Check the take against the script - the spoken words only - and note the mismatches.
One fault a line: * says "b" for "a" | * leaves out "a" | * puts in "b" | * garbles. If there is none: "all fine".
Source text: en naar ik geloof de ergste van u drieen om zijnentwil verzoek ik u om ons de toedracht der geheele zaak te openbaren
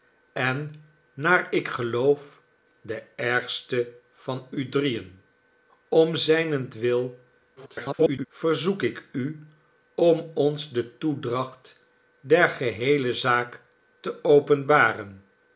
* garbles